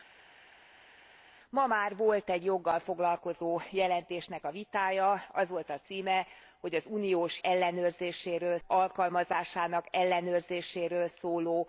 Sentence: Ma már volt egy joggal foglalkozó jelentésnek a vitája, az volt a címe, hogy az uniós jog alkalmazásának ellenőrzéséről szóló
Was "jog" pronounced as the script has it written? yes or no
no